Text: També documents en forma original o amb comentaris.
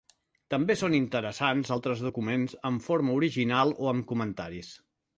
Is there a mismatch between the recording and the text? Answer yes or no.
yes